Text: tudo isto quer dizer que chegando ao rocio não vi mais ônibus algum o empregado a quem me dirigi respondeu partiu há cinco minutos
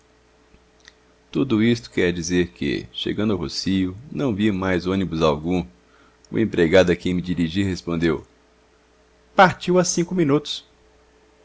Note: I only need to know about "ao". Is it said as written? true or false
true